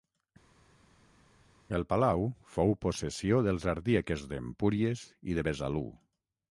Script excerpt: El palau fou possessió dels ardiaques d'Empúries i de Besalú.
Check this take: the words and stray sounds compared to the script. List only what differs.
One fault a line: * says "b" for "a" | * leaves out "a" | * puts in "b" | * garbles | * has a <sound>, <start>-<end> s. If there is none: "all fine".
all fine